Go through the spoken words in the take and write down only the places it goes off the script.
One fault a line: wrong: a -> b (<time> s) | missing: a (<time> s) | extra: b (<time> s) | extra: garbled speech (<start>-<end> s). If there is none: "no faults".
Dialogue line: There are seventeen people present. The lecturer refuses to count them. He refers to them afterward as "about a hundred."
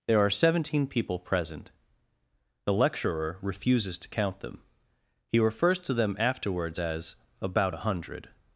wrong: afterward -> afterwards (6.2 s)